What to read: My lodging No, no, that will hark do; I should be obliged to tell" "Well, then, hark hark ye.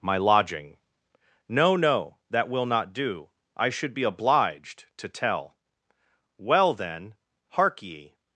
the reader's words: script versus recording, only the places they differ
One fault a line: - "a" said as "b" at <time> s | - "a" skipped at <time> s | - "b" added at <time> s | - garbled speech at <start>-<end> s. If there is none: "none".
- "hark" said as "not" at 2.6 s
- "hark" skipped at 7.8 s